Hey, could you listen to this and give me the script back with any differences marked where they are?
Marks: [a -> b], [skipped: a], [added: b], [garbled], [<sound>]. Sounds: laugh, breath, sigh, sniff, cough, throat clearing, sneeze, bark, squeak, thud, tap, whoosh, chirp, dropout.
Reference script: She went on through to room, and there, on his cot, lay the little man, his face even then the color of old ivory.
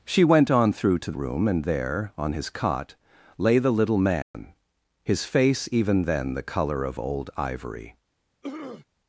She went on through to room, and there, on his cot, lay the little man, [dropout] his face even then the color of old ivory. [throat clearing]